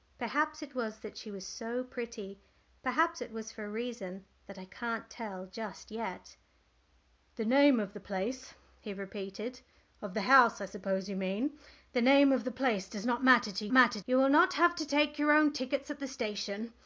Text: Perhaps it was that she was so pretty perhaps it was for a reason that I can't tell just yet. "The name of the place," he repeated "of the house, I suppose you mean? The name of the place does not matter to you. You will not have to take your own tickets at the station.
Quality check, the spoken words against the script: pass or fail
fail